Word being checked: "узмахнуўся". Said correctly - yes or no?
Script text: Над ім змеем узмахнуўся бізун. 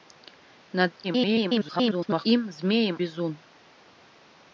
no